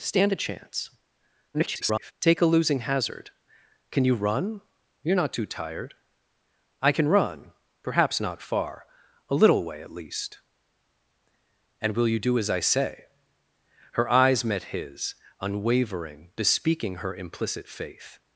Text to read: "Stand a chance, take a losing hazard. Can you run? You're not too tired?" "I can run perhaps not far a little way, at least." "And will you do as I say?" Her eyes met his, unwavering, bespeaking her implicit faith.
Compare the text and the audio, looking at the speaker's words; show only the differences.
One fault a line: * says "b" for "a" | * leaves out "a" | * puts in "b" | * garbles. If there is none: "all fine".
* garbles